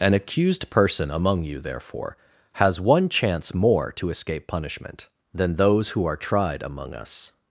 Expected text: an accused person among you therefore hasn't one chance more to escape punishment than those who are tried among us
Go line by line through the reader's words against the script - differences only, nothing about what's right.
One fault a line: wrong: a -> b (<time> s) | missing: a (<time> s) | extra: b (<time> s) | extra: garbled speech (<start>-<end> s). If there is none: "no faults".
wrong: hasn't -> has (2.5 s)